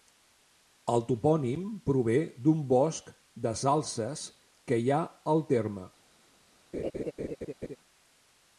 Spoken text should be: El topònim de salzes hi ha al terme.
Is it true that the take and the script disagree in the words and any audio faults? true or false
true